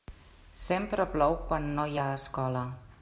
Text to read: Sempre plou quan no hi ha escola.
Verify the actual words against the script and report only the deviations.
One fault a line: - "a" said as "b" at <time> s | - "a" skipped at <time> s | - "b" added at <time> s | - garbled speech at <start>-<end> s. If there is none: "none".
none